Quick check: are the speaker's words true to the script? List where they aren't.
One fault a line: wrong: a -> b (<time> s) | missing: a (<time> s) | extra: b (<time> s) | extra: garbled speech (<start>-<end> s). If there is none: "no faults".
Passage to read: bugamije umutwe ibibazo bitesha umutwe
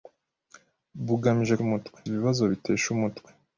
no faults